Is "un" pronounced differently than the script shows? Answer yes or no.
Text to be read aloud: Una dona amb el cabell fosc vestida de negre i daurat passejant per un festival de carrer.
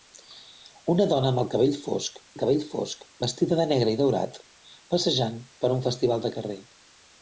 no